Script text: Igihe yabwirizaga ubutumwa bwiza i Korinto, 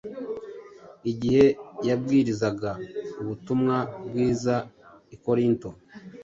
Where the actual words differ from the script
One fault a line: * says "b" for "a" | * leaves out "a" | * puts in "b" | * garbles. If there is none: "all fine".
all fine